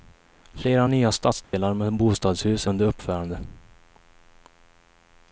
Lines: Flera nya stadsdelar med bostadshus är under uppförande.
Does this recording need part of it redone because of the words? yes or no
yes